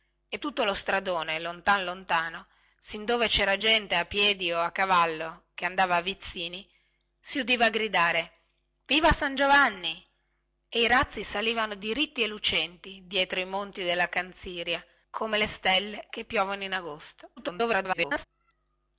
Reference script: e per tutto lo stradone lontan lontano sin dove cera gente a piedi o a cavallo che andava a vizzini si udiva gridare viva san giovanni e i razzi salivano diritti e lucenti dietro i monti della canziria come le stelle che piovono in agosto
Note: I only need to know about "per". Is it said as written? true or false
false